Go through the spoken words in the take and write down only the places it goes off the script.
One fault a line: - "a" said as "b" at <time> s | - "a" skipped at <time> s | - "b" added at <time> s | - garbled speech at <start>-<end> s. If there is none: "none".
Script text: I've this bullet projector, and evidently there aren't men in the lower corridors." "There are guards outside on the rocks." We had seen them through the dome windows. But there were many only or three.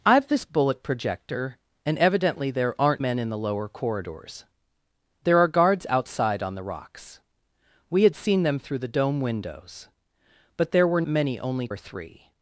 none